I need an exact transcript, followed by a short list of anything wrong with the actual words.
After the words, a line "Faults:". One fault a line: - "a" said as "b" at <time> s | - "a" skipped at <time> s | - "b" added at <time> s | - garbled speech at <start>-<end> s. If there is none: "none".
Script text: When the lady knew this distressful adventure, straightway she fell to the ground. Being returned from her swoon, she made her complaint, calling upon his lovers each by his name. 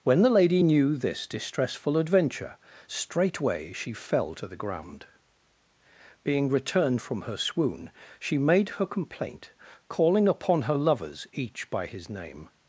When the lady knew this distressful adventure, straightway she fell to the ground. Being returned from her swoon, she made her complaint, calling upon her lovers each by his name.
Faults:
- "his" said as "her" at 10.6 s